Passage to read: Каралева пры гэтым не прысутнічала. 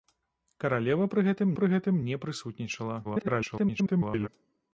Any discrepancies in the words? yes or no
yes